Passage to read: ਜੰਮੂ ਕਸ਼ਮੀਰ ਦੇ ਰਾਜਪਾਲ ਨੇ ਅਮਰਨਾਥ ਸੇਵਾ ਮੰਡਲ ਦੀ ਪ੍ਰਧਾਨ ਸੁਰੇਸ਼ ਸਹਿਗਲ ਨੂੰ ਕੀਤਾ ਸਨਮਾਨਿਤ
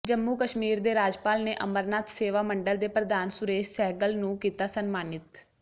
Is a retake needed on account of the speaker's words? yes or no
yes